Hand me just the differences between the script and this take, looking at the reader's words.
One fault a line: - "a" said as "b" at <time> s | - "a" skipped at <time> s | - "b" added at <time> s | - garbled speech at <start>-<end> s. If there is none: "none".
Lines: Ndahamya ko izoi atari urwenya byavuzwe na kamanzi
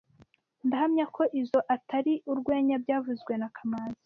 none